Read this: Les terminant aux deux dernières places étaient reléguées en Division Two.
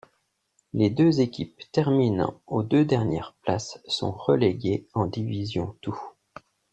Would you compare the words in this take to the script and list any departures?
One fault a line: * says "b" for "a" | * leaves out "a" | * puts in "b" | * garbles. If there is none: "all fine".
* puts in "deux équipes"
* says "sont" for "étaient"